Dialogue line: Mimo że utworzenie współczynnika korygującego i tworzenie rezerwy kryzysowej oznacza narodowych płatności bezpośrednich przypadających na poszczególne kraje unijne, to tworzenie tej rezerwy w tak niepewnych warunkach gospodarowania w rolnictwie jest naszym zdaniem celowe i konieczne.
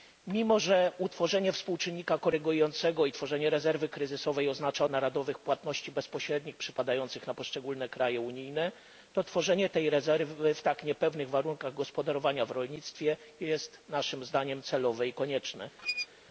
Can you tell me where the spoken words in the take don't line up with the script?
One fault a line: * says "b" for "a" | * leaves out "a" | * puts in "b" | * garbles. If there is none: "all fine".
all fine